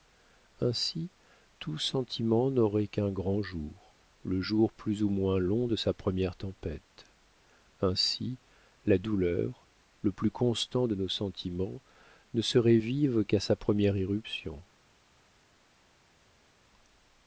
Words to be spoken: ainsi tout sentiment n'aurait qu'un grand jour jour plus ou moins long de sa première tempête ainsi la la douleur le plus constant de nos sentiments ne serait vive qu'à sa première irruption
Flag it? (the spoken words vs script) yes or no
yes